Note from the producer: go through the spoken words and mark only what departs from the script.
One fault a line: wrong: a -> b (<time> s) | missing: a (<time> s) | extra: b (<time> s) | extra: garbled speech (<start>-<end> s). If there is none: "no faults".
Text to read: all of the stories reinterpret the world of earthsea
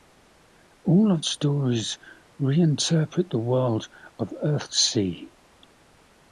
missing: the (1.2 s)